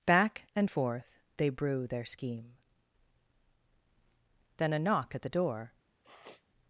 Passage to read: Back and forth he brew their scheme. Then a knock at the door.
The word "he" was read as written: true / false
false